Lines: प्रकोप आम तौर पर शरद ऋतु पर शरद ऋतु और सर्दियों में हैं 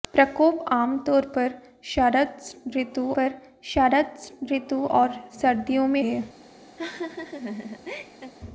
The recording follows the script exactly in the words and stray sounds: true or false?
false